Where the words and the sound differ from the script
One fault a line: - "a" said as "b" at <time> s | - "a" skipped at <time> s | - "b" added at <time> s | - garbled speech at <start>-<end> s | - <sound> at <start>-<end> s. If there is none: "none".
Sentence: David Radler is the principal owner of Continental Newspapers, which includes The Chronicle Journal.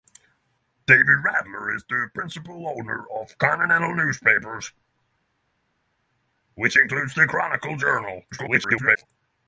- garbled speech at 8.3-9.1 s